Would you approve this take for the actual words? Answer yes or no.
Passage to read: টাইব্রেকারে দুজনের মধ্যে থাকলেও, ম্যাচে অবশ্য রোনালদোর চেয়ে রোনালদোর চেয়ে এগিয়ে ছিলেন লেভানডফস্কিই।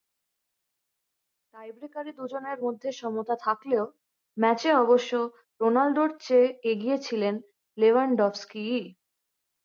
no